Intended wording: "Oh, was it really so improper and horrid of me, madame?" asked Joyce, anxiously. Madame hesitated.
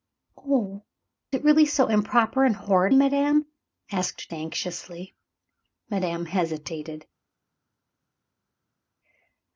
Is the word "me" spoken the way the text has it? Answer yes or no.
no